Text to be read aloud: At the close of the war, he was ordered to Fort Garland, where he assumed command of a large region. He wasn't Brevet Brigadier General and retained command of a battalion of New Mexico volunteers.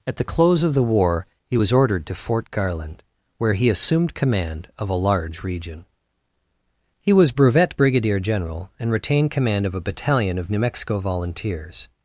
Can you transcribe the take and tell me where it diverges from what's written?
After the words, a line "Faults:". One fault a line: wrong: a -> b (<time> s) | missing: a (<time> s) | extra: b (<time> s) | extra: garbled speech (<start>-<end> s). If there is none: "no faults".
At the close of the war, he was ordered to Fort Garland, where he assumed command of a large region. He was Brevet Brigadier General and retained command of a battalion of New Mexico volunteers.
Faults:
wrong: wasn't -> was (7.1 s)